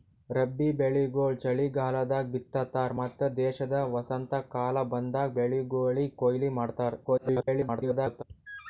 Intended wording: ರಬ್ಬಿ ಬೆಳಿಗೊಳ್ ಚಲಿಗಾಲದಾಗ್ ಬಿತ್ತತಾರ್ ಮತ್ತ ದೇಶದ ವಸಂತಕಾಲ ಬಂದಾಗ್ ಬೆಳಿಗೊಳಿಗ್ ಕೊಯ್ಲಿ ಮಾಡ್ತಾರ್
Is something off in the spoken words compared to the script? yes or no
yes